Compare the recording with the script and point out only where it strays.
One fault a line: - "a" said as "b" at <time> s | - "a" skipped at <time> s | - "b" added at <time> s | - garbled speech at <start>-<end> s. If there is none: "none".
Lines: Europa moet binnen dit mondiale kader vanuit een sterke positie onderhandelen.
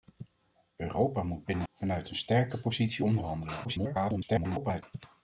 - "dit mondiale kader" skipped at 1.7 s
- garbled speech at 3.6-4.8 s